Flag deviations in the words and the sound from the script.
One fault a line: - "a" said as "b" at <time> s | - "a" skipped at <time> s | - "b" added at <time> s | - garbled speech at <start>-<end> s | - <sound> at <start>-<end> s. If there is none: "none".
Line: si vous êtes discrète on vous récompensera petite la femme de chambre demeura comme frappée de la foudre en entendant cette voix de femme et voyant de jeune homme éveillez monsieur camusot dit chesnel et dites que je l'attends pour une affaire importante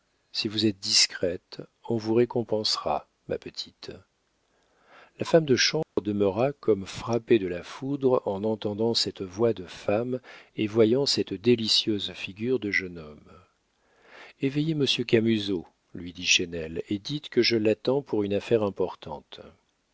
- "ma" added at 3.3 s
- dropout at 5.8-6.0 s
- "cette délicieuse figure" added at 11.1 s
- "lui" added at 15.9 s